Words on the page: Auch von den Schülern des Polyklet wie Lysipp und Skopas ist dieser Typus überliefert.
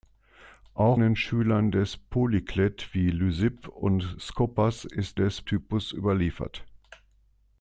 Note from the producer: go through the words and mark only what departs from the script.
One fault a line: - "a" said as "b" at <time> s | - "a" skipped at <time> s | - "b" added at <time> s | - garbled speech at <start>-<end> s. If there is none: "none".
- "von" skipped at 1.0 s
- "dieser" said as "des" at 5.1 s